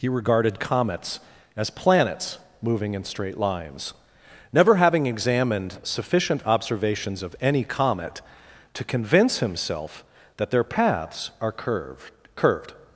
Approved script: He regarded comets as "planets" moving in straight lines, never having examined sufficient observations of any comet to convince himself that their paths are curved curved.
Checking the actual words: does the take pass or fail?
pass